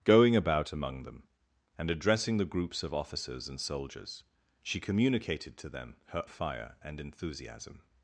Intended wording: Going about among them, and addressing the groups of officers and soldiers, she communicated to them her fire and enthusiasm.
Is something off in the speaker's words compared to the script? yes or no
no